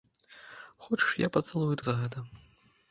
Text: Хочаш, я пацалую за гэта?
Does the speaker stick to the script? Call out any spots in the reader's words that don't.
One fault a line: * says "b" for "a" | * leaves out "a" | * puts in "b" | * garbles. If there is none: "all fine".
all fine